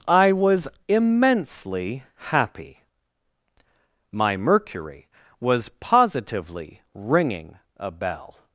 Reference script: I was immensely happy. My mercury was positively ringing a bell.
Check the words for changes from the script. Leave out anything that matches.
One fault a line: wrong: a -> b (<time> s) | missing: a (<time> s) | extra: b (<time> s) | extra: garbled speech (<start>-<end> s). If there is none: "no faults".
no faults